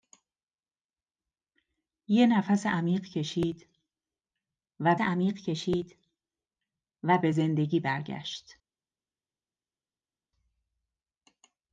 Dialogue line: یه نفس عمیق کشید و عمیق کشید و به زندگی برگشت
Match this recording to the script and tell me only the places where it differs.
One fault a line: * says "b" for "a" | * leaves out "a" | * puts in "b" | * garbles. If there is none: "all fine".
all fine